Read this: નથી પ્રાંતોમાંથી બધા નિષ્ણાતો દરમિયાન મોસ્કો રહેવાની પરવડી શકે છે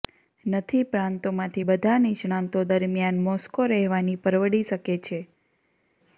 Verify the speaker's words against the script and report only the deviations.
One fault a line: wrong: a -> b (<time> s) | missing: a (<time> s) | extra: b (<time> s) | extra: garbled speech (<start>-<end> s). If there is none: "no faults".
no faults